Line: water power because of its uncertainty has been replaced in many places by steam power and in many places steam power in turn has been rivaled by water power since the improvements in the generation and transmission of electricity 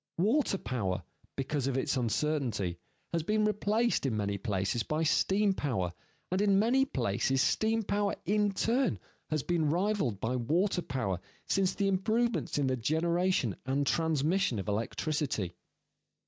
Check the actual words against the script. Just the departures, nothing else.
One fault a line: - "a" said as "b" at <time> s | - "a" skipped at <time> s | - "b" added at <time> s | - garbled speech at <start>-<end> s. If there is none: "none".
none